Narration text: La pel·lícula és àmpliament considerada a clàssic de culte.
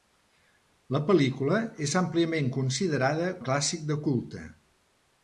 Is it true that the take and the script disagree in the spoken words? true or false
false